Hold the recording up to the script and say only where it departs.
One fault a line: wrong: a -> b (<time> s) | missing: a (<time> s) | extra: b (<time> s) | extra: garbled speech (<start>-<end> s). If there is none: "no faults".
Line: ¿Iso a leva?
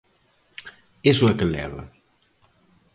extra: que (1.4 s)